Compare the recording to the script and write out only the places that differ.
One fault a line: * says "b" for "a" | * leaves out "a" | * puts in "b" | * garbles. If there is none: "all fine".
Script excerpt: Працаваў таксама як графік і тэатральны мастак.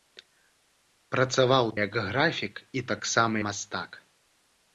* leaves out "таксама"
* says "таксама" for "тэатральны"